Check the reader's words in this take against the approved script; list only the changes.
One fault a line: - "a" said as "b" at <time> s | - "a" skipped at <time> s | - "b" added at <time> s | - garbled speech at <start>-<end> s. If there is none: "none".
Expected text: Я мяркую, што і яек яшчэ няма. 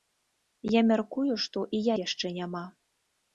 - "яек" skipped at 1.8 s